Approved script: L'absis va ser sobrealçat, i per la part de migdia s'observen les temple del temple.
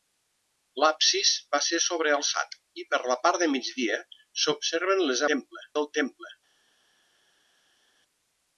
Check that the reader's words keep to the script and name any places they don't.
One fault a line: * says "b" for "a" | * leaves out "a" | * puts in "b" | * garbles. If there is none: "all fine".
all fine